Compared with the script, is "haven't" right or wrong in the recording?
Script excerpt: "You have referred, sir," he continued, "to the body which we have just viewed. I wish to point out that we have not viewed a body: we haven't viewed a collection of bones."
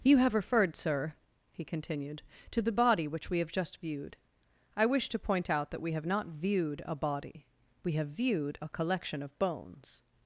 wrong